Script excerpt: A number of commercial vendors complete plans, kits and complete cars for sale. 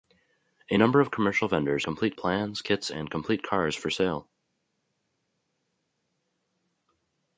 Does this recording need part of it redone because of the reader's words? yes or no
no